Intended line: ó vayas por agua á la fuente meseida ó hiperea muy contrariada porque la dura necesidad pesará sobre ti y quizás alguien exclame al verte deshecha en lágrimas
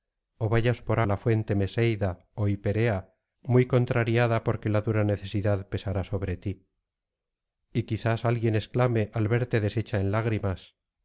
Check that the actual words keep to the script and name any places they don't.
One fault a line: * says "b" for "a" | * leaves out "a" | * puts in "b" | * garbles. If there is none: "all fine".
* leaves out "agua"